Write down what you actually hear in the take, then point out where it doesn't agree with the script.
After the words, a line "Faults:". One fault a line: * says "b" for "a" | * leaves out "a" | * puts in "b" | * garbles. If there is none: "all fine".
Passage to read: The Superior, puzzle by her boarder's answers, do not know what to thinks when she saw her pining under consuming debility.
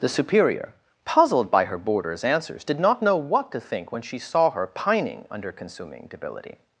The Superior, puzzled by her boarder's answers, did not know what to think when she saw her pining under consuming debility.
Faults:
* says "puzzled" for "puzzle"
* says "did" for "do"
* says "think" for "thinks"